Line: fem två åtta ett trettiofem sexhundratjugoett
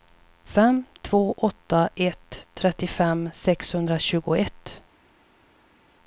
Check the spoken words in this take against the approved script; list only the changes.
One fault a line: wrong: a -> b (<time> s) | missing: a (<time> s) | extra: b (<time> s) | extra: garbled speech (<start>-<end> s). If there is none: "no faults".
no faults